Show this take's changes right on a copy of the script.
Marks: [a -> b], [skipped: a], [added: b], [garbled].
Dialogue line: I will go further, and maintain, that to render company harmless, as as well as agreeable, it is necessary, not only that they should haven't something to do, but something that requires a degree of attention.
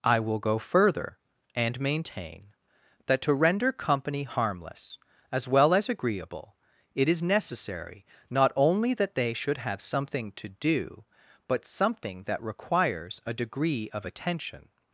I will go further, and maintain, that to render company harmless, as [skipped: as] well as agreeable, it is necessary, not only that they should [haven't -> have] something to do, but something that requires a degree of attention.